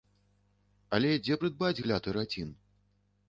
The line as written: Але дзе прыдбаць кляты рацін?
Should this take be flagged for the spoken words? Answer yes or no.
no